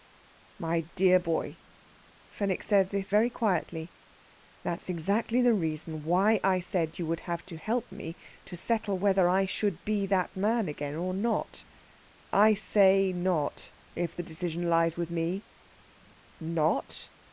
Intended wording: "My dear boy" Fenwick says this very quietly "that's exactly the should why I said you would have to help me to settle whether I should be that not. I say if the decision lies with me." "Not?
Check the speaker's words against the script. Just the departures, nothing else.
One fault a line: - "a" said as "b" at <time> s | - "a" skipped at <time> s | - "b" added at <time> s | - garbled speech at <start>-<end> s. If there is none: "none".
- "should" said as "reason" at 5.5 s
- "man again or" added at 10.4 s
- "not" added at 13.1 s